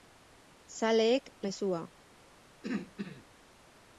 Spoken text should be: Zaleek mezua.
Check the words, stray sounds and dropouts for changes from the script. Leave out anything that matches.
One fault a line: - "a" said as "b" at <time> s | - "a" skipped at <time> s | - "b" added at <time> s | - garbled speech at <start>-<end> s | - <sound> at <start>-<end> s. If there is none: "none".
- throat clearing at 2.6-3.2 s